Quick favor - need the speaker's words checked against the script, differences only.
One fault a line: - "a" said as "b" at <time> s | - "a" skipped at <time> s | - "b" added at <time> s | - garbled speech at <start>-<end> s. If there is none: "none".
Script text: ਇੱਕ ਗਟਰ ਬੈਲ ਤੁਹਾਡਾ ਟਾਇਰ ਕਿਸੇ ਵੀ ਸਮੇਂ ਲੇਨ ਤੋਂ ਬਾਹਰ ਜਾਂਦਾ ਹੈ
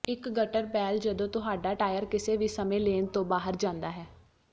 - "ਜਦੋਂ" added at 1.0 s